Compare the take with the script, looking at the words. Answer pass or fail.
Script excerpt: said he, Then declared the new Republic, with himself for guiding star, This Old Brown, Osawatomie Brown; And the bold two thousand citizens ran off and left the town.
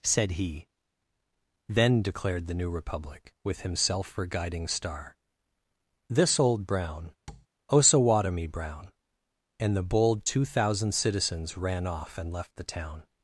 pass